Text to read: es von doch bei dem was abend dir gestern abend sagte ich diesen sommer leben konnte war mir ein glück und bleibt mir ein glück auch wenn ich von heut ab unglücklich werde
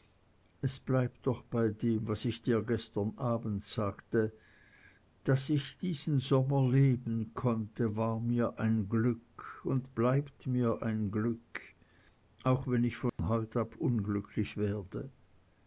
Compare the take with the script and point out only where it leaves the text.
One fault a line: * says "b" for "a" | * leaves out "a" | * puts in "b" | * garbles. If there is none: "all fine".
* says "bleibt" for "von"
* says "ich" for "abend"
* puts in "daß"